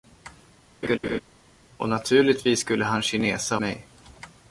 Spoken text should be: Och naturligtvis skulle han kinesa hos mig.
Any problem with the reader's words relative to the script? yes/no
yes